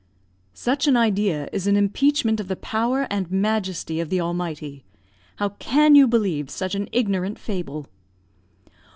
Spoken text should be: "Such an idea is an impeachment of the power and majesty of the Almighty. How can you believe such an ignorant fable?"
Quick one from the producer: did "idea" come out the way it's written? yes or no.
yes